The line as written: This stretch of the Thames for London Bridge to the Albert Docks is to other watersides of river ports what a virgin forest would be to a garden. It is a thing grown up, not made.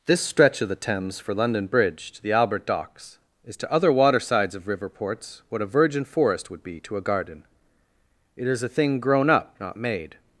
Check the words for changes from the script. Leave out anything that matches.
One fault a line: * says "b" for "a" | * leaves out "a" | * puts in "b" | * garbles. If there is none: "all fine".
all fine